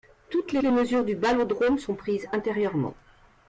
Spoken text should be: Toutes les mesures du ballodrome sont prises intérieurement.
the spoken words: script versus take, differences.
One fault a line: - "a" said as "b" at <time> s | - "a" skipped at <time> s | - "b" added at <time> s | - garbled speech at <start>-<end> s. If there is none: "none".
- "les" added at 0.6 s